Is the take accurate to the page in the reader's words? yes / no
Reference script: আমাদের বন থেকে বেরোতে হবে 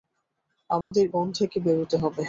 yes